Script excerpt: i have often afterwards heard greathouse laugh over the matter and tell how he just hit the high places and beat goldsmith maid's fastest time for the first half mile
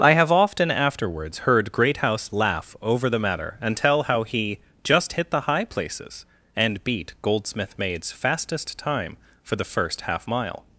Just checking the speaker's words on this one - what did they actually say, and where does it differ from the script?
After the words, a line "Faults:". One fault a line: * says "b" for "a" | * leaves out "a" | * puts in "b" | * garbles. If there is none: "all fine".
i have often afterwards heard greathouse laugh over the matter and tell how he just hit the high places and beat goldsmith maid's fastest time for the first half mile
Faults:
all fine